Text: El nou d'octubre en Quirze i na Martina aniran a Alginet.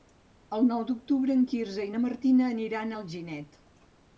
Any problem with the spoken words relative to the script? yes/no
no